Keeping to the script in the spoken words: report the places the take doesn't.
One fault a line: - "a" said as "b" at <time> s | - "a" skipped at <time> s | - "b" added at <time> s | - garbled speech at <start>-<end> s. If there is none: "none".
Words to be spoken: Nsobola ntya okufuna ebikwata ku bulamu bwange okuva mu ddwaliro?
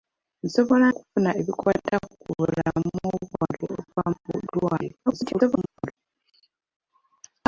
- "ntya" skipped at 0.8 s
- garbled speech at 5.1-5.9 s